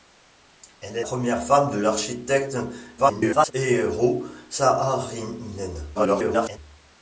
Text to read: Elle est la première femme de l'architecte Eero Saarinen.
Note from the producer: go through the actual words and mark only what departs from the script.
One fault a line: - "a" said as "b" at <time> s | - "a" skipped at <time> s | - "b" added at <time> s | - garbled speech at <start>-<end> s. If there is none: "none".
- "la" skipped at 1.1 s
- garbled speech at 3.0-3.5 s
- garbled speech at 5.9-6.6 s